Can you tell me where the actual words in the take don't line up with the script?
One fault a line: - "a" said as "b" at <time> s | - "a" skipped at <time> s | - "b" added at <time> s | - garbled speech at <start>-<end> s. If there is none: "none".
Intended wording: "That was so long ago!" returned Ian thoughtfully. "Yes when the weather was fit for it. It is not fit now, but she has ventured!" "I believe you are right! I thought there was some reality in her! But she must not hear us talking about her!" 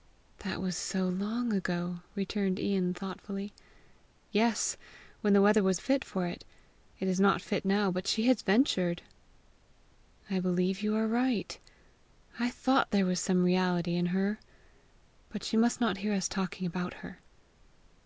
none